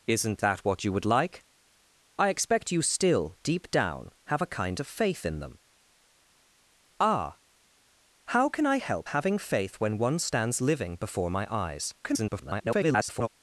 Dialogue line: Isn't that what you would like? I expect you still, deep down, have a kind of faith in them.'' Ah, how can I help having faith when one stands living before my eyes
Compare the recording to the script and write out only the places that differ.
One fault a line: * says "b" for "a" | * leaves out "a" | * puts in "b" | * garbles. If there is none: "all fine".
* garbles